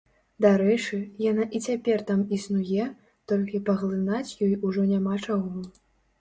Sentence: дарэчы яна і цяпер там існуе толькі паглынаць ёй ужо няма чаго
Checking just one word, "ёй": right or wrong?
right